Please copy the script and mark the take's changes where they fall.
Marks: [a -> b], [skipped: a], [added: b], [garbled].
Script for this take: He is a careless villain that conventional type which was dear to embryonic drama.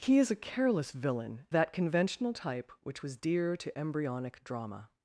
He is a careless villain that conventional type which was dear to embryonic drama.